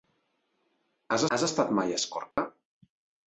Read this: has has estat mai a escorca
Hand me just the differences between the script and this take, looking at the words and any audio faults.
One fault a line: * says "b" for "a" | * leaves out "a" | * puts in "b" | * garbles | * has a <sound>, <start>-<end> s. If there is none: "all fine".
* has a dropout, 2.3-2.4 s